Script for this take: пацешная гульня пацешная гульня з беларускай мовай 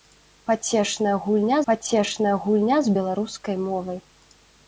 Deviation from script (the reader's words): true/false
false